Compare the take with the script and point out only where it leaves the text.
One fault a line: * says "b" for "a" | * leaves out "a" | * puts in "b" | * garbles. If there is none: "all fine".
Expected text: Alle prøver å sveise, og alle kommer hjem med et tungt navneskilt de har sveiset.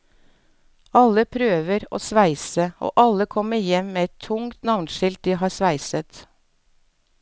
all fine